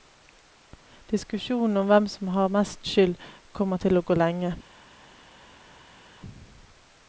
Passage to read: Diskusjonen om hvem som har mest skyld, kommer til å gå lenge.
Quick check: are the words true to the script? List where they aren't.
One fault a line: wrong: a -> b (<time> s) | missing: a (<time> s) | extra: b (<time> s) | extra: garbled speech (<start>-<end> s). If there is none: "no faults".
no faults